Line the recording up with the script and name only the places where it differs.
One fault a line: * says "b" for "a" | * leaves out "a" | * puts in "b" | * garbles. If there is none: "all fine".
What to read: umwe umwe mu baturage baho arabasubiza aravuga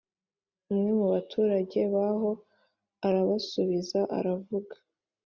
* leaves out "umwe"